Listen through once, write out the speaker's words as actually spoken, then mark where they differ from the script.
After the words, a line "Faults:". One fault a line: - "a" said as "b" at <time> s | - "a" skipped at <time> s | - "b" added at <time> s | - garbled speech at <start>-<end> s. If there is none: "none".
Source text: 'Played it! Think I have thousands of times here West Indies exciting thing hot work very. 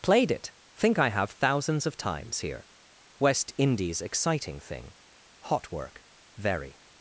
'Played it! Think I have thousands of times here West Indies exciting thing hot work very.
Faults:
none